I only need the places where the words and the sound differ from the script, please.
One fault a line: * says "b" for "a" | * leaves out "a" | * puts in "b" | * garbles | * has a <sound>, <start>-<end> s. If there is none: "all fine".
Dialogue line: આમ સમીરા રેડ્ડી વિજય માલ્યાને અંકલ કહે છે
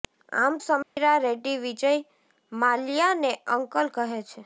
* has a dropout, 0.8-1.0 s